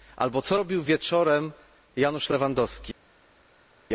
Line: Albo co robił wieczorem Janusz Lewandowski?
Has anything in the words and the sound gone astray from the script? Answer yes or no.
no